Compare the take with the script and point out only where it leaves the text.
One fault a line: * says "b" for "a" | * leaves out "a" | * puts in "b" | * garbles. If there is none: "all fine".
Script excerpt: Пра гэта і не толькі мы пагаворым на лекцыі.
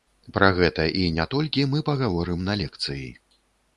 all fine